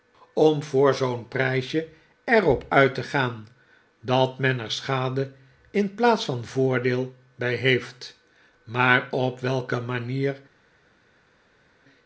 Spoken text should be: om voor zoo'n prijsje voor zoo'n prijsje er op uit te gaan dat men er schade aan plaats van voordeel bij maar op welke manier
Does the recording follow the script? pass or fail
fail